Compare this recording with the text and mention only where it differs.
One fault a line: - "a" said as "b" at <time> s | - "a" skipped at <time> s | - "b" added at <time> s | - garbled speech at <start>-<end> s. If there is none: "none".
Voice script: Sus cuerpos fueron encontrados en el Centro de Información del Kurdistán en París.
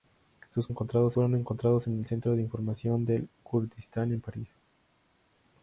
- "cuerpos" said as "encontrados" at 0.7 s